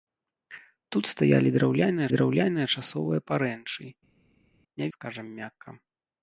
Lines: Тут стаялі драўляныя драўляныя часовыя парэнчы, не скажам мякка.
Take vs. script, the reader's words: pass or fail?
pass